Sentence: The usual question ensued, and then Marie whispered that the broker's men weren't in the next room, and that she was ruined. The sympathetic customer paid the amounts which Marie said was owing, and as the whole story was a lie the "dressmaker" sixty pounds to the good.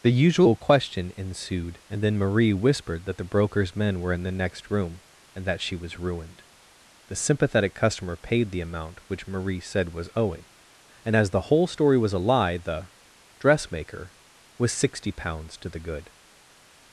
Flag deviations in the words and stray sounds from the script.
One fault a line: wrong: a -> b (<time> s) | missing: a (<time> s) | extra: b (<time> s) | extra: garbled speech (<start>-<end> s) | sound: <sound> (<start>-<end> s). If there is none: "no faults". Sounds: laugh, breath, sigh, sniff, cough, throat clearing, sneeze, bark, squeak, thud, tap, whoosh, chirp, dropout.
wrong: weren't -> were (4.0 s)
wrong: amounts -> amount (8.6 s)
extra: was (14.6 s)